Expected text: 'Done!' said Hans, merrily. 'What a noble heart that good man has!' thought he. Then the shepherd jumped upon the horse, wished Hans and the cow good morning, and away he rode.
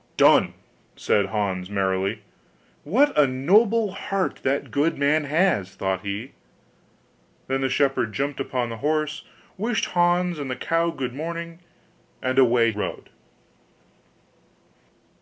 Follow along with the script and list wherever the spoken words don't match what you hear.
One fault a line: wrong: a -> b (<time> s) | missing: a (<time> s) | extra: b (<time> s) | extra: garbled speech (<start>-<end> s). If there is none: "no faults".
missing: he (12.7 s)